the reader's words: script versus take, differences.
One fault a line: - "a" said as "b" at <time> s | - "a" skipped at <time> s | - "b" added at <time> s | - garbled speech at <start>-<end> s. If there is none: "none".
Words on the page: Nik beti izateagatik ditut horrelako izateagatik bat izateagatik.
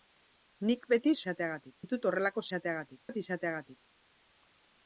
none